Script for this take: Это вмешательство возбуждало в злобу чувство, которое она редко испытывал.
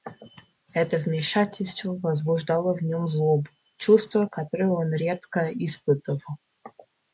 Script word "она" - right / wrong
wrong